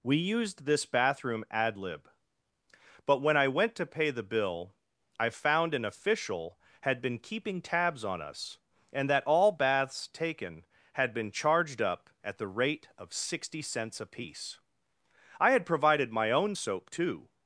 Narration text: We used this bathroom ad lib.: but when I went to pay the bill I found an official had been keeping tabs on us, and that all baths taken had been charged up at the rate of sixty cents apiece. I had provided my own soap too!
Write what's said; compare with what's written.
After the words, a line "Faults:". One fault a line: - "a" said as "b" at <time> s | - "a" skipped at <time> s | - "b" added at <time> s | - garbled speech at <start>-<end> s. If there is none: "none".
We used this bathroom ad lib.: but when I went to pay the bill I found an official had been keeping tabs on us, and that all baths taken had been charged up at the rate of sixty cents apiece. I had provided my own soap too!
Faults:
none